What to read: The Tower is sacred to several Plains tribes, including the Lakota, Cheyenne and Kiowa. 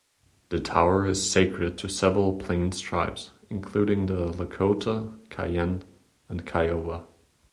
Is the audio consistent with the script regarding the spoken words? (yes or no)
yes